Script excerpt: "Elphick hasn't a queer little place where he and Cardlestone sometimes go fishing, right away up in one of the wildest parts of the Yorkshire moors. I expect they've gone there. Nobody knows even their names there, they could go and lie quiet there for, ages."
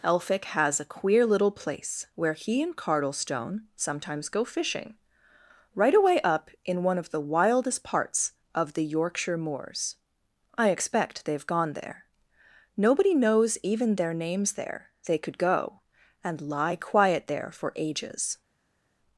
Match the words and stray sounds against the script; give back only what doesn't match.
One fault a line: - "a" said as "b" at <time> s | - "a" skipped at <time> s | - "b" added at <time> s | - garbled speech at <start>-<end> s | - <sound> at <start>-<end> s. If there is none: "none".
- "hasn't" said as "has" at 0.5 s